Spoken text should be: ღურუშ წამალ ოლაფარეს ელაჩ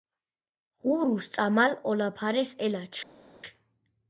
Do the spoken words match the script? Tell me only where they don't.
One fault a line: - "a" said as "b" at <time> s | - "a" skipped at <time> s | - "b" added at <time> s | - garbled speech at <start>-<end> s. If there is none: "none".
none